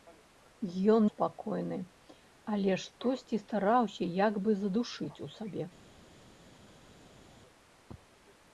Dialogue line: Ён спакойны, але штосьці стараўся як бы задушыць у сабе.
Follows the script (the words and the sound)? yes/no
yes